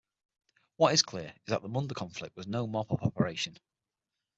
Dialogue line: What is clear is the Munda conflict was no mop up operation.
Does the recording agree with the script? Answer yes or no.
no